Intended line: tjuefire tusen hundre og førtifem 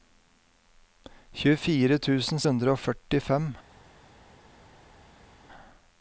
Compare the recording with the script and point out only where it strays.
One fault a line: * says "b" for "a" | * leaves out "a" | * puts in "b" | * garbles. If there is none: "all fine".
all fine